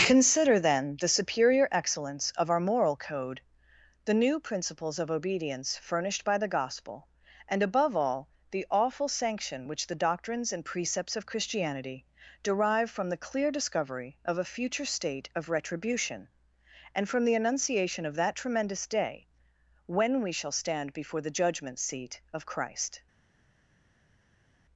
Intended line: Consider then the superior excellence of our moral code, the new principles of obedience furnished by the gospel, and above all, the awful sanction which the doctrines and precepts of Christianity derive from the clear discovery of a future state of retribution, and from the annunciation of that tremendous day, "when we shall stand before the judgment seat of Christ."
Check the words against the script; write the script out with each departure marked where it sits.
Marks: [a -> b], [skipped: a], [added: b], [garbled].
Consider then the superior excellence of our moral code, the new principles of obedience furnished by the gospel, and above all, the awful sanction which the doctrines and precepts of Christianity derive from the clear discovery of a future state of retribution, and from the annunciation of that tremendous day, "when we shall stand before the judgment seat of Christ."